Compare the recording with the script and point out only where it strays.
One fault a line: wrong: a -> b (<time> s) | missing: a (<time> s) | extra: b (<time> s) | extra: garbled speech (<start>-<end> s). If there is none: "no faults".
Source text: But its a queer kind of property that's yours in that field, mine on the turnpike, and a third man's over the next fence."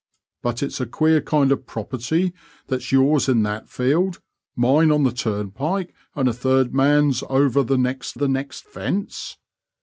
extra: the next (8.1 s)